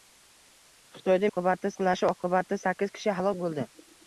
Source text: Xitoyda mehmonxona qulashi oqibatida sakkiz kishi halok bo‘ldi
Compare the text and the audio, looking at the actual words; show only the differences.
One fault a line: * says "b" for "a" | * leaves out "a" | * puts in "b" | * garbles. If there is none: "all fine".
* says "oqibatida" for "mehmonxona"